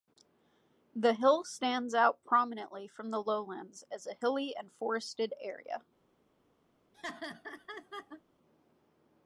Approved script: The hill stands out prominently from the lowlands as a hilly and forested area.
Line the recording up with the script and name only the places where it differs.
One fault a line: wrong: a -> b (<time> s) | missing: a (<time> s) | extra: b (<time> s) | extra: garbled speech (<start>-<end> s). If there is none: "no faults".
no faults